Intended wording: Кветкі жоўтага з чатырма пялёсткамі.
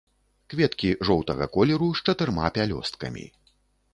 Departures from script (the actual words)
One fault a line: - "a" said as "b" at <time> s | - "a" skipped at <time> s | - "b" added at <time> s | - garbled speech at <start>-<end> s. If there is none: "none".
- "колеру" added at 1.6 s